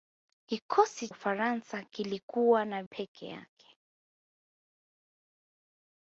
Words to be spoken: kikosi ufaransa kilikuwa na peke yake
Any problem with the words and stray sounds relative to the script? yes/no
no